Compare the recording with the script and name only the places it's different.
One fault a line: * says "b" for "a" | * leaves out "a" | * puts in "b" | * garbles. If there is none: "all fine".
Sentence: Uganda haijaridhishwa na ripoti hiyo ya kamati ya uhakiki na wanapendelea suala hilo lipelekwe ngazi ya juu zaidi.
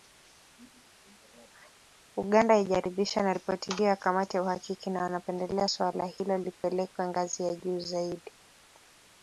all fine